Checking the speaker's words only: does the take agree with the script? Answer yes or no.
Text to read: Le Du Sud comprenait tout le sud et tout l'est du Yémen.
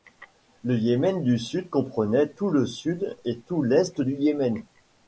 no